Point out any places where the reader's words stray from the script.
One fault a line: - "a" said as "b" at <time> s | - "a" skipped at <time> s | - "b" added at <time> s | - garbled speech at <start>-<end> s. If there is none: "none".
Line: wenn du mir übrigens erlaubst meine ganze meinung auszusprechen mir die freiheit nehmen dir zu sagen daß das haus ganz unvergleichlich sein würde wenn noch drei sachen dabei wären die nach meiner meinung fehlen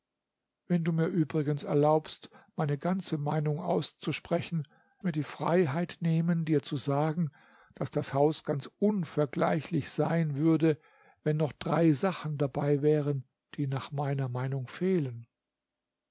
none